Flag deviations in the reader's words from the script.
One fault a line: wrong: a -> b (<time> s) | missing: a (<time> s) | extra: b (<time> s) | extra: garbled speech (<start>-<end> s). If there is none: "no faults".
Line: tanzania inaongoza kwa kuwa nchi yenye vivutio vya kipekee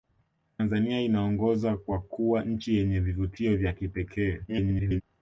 extra: garbled speech (4.5-5.0 s)